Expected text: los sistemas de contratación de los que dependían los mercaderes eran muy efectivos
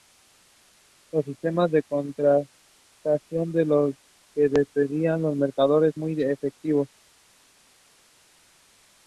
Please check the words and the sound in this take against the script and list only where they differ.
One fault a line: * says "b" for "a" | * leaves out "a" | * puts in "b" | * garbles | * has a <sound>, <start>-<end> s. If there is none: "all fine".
* leaves out "eran"